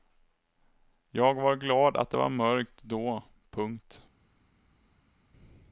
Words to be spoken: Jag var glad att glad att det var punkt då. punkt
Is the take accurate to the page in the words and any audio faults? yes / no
no